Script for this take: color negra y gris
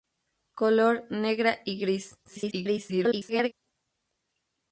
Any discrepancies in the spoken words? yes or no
yes